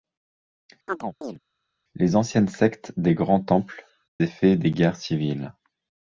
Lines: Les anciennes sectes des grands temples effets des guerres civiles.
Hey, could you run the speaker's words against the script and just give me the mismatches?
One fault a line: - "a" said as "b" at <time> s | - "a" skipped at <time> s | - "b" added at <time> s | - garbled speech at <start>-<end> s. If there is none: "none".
none